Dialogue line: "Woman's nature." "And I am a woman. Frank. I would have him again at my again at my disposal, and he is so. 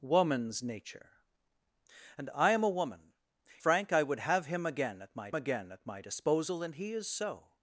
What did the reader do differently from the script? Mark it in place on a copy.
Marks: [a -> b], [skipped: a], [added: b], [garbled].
"Woman's nature." "And I am a woman. Frank. I would have him again at my again at my disposal, and he is so.